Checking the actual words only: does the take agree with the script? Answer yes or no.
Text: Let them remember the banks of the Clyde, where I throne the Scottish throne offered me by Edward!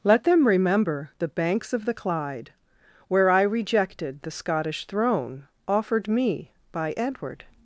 no